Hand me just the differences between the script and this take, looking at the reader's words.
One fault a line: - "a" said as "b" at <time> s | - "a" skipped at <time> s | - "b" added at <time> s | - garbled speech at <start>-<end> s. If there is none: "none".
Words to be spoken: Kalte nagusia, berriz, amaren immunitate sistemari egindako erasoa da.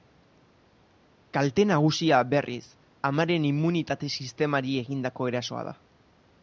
none